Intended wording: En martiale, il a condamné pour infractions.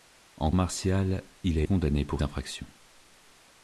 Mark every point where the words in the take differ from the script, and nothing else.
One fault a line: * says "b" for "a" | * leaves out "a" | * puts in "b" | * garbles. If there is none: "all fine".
all fine